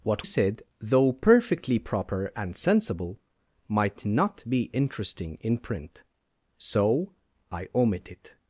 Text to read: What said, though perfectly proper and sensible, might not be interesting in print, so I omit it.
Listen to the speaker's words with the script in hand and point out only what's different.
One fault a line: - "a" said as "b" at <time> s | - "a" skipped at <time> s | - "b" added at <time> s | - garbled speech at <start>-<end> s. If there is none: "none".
none